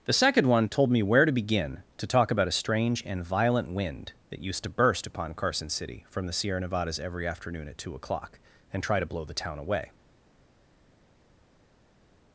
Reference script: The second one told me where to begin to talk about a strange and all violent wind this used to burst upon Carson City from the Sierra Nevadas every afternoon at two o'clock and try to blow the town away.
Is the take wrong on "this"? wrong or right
wrong